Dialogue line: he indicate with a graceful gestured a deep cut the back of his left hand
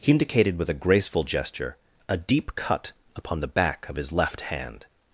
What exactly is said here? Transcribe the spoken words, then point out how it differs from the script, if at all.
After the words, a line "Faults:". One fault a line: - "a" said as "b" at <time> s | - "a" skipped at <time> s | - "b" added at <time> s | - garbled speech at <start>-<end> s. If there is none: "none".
he indicated with a graceful gesture a deep cut upon the back of his left hand
Faults:
- "indicate" said as "indicated" at 0.1 s
- "gestured" said as "gesture" at 1.2 s
- "upon" added at 3.2 s